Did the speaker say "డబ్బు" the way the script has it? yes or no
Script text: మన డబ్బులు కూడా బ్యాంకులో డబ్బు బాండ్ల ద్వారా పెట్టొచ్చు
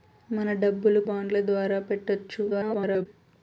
no